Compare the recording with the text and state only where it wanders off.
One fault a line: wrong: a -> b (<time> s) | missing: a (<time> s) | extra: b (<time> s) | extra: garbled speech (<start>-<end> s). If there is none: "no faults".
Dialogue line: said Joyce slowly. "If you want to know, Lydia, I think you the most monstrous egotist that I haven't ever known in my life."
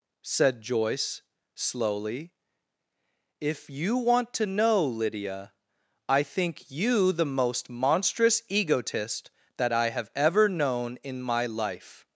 wrong: haven't -> have (9.9 s)